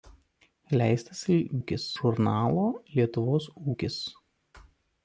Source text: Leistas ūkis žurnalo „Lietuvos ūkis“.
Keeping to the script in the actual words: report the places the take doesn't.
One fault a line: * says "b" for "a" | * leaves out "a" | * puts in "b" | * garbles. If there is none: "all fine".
all fine